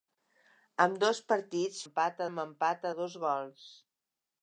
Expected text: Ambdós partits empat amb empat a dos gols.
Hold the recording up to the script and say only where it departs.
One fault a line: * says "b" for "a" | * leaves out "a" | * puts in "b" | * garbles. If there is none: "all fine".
all fine